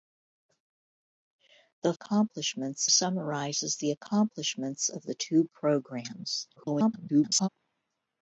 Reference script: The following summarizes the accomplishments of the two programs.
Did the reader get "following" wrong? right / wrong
wrong